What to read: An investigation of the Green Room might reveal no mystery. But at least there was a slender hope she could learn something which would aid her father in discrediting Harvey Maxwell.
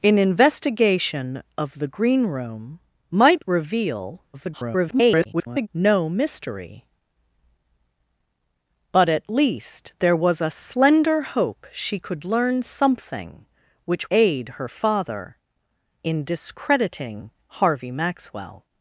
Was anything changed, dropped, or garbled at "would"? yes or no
yes